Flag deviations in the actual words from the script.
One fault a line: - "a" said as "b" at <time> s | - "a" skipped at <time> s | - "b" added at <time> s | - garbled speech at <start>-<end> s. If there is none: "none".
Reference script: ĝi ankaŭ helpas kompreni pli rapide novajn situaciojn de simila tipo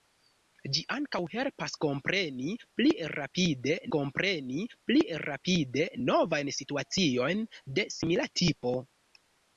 - "kompreni pli rapide" added at 3.9 s